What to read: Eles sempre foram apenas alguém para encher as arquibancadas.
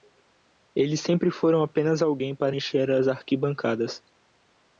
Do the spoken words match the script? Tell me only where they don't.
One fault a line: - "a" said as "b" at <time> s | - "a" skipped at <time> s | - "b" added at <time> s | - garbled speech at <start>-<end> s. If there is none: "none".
none